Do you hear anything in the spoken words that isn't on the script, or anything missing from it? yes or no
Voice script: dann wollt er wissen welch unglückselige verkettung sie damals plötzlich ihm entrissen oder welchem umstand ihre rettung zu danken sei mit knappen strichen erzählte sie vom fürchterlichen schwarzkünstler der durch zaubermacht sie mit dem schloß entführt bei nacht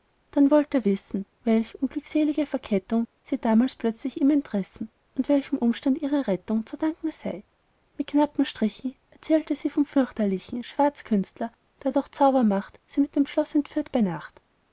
yes